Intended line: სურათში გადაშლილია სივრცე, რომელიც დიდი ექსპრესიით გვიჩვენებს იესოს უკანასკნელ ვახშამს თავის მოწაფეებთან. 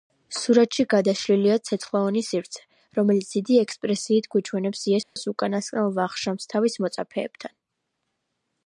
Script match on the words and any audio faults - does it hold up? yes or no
no